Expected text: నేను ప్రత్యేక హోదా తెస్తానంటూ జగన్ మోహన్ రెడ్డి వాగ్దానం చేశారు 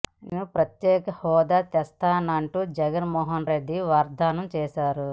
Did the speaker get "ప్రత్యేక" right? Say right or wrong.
right